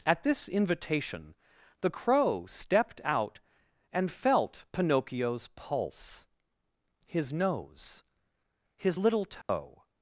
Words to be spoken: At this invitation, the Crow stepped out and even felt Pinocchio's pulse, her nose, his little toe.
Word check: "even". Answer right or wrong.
wrong